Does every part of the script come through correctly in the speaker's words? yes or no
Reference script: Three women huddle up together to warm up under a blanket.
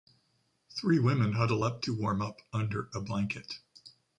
no